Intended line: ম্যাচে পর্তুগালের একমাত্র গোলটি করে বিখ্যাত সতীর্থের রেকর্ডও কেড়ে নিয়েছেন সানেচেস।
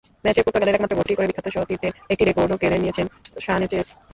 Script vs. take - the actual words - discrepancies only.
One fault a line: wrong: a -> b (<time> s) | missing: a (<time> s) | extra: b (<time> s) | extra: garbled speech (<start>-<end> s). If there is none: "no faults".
extra: একটি (2.1 s)